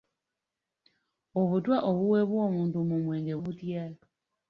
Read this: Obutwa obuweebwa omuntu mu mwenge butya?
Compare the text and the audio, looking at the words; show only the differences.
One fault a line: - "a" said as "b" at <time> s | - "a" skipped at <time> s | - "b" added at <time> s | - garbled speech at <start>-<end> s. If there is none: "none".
none